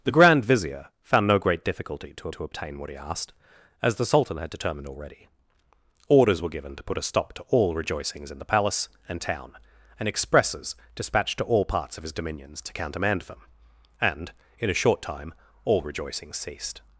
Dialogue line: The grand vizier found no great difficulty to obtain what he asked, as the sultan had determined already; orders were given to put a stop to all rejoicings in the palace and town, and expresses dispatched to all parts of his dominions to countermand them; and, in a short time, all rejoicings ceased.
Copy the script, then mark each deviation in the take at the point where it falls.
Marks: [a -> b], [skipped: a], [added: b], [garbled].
The grand vizier found no great difficulty to [added: to] obtain what he asked, as the sultan had determined already; orders were given to put a stop to all rejoicings in the palace and town, and expresses dispatched to all parts of his dominions to countermand them; and, in a short time, all rejoicings ceased.